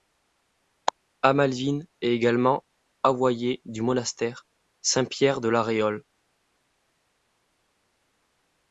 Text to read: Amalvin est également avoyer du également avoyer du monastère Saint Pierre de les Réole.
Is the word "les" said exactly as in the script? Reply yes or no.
no